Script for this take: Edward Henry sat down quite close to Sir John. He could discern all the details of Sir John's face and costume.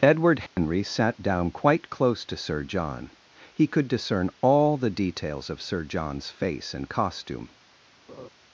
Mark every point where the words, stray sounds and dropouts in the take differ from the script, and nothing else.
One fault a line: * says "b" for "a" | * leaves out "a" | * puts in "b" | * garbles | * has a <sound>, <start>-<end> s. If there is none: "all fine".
* has a dropout, 0.5-0.6 s
* has a laugh, 8.1-8.3 s